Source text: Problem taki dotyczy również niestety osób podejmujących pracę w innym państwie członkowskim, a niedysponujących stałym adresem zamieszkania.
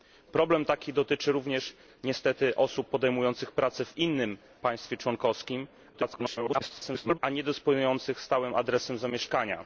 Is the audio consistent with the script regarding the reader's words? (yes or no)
no